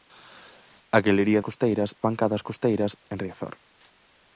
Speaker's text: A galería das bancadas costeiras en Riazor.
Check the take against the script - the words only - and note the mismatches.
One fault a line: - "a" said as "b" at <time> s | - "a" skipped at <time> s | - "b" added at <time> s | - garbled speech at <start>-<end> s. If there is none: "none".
- "das" said as "costeiras" at 1.5 s